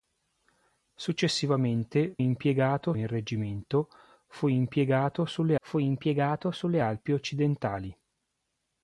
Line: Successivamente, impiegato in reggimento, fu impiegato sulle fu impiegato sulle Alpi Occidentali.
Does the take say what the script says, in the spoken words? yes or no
yes